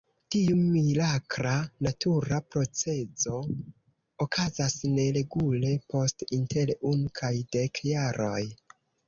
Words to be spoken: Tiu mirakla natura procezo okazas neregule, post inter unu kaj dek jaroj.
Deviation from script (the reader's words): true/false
false